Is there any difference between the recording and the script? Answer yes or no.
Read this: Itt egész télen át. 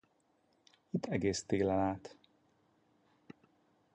no